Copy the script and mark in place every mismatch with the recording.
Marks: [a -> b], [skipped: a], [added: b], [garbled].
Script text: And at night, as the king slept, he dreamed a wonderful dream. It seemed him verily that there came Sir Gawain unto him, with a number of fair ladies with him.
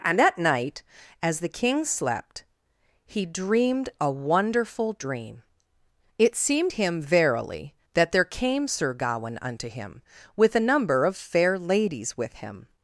And at night, as the king slept, he dreamed a wonderful dream. It seemed him verily that there came Sir Gawain unto him, with a number of fair ladies with him.